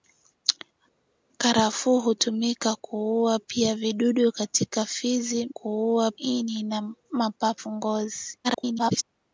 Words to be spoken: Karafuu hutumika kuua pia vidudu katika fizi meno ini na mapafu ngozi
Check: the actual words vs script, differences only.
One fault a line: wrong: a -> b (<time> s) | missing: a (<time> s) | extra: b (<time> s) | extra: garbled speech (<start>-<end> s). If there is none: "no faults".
wrong: meno -> kuua (5.5 s)
extra: garbled speech (8.4-9.0 s)